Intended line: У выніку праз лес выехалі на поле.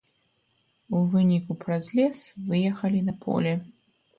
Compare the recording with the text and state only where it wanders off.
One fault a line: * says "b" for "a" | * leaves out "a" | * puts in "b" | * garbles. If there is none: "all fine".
all fine